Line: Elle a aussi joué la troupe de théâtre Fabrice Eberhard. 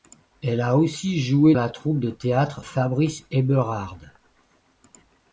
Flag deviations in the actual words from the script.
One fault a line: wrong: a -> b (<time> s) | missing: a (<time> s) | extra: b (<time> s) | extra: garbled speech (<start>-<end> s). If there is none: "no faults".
no faults